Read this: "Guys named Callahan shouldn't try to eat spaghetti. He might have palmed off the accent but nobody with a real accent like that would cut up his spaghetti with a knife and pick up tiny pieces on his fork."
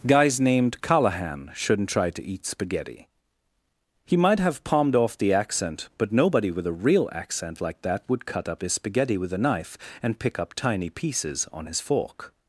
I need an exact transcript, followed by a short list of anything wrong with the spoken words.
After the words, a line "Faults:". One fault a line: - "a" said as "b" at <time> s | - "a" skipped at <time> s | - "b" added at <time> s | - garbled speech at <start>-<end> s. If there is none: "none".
"Guys named Callahan shouldn't try to eat spaghetti. He might have palmed off the accent but nobody with a real accent like that would cut up his spaghetti with a knife and pick up tiny pieces on his fork."
Faults:
none